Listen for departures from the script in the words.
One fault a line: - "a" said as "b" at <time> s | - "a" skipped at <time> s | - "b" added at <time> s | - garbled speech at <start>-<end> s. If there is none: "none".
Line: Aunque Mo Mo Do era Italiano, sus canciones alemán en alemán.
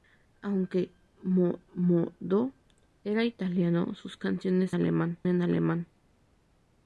none